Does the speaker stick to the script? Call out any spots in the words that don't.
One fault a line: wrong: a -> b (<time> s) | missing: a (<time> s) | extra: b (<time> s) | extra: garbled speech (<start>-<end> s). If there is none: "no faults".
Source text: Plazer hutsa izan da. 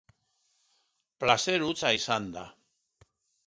no faults